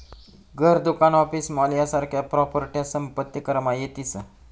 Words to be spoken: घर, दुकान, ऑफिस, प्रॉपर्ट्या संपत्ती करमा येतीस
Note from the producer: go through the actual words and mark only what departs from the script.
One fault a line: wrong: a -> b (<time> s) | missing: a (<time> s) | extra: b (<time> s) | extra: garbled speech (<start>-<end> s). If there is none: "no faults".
extra: मॉल यासारख्या (1.5 s)